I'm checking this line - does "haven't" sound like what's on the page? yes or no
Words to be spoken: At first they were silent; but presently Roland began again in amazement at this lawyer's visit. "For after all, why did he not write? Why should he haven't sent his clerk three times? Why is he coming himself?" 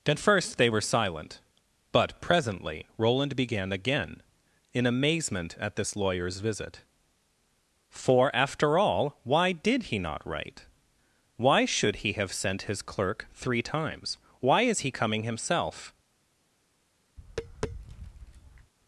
no